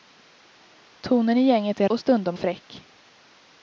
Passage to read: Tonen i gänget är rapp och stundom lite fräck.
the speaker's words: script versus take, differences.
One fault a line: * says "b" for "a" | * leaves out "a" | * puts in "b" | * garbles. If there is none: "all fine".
* leaves out "rapp"
* leaves out "lite"